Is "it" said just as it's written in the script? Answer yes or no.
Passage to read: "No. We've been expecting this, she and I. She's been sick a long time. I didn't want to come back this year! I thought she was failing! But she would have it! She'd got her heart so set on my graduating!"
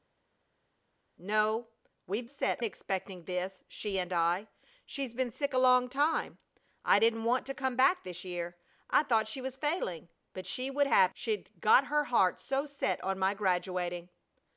no